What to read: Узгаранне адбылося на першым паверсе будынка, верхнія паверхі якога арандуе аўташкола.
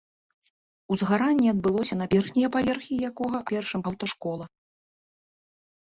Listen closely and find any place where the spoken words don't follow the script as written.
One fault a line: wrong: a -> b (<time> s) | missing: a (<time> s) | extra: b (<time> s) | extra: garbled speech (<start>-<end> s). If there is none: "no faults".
missing: першым паверсе будынка (2.1 s)
wrong: арандуе -> першым (3.5 s)